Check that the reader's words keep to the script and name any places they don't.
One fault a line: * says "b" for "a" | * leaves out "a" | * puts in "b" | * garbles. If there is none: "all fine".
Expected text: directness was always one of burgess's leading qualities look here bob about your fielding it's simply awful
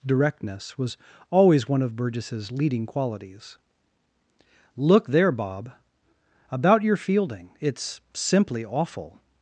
* says "there" for "here"